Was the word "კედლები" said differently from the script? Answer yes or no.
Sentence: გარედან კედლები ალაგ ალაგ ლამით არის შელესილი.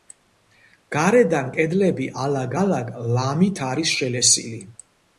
no